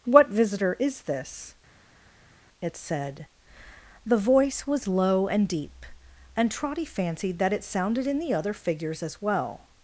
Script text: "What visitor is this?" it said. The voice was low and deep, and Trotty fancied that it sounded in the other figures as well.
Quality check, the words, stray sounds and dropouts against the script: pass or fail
pass